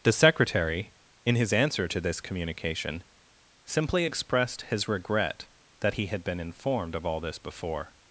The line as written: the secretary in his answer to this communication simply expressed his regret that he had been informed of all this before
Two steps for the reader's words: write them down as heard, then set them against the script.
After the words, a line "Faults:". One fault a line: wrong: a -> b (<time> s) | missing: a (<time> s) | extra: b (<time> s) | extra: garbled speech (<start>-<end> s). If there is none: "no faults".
the secretary in his answer to this communication simply expressed his regret that he had been informed of all this before
Faults:
no faults